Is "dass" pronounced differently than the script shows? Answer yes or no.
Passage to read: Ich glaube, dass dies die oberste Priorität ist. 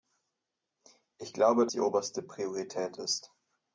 yes